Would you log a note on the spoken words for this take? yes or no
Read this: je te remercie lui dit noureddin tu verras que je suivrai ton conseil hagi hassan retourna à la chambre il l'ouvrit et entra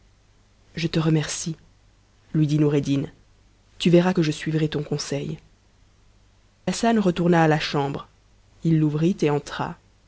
yes